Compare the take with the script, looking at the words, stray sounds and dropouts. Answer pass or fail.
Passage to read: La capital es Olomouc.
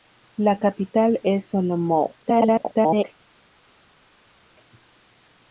fail